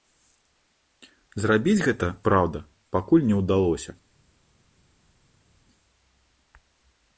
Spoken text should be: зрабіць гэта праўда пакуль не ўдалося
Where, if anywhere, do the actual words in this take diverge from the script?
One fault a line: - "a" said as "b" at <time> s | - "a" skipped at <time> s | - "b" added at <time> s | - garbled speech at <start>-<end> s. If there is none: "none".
none